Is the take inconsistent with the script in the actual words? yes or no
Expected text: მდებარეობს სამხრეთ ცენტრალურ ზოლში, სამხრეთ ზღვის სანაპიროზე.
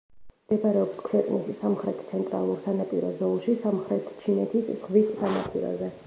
yes